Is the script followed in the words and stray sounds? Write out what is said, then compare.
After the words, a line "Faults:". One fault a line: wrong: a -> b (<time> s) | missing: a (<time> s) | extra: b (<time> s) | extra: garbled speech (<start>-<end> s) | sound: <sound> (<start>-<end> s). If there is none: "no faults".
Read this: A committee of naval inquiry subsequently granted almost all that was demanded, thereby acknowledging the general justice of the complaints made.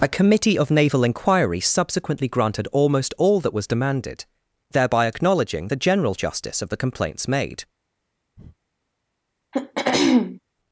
A committee of naval inquiry subsequently granted almost all that was demanded, thereby acknowledging the general justice of the complaints made.
Faults:
sound: breath (8.4-8.6 s)
sound: throat clearing (9.5-10.4 s)